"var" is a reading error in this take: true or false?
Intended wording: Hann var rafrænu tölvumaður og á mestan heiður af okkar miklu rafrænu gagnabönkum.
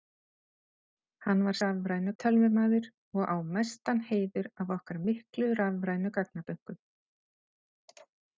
false